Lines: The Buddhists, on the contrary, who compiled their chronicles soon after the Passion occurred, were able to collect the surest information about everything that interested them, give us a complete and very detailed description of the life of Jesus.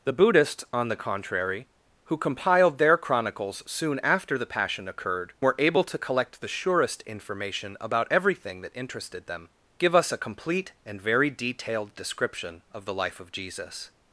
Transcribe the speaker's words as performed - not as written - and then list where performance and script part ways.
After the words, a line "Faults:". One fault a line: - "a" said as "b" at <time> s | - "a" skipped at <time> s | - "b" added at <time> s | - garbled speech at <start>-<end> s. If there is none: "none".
The Buddhists, on the contrary, who compiled their chronicles soon after the Passion occurred, were able to collect the surest information about everything that interested them, give us a complete and very detailed description of the life of Jesus.
Faults:
none